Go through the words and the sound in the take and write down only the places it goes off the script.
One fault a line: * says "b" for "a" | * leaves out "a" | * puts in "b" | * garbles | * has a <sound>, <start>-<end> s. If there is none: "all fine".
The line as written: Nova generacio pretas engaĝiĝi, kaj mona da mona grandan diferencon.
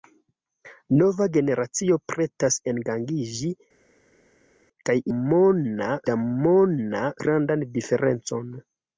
all fine